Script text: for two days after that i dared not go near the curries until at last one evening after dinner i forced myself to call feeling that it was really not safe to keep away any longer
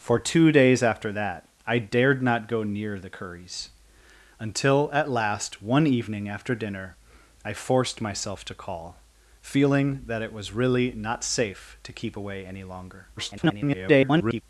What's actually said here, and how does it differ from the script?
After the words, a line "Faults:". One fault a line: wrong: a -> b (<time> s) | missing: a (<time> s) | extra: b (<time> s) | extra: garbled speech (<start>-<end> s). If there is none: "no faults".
for two days after that i dared not go near the curries until at last one evening after dinner i forced myself to call feeling that it was really not safe to keep away any longer [garbled]
Faults:
extra: garbled speech (13.2-14.4 s)